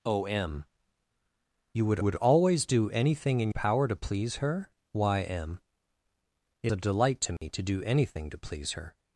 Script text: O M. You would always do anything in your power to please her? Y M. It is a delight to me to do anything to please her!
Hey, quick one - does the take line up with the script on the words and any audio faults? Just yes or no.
no